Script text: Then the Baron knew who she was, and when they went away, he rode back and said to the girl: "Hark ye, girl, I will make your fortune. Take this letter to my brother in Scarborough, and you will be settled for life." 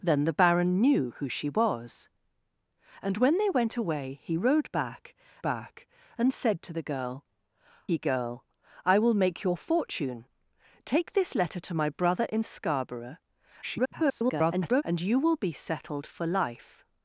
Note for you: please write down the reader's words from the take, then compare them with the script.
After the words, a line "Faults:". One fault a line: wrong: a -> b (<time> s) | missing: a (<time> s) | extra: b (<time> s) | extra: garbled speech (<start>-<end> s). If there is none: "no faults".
Then the Baron knew who she was, and when they went away, he rode back back and said to the girl: "Ye, girl, I will make your fortune. Take this letter to my brother in Scarborough, [garbled] and you will be settled for life."
Faults:
extra: back (5.4 s)
missing: Hark (7.2 s)
extra: garbled speech (13.6-14.8 s)